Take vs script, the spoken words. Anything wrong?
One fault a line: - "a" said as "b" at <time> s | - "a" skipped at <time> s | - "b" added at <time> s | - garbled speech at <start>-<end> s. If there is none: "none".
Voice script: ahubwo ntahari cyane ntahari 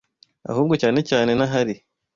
- "ntahari" said as "cyane" at 0.8 s